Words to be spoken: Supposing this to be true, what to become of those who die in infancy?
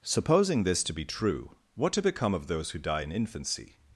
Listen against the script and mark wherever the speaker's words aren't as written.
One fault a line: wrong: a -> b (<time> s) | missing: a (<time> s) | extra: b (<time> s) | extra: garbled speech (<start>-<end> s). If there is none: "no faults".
no faults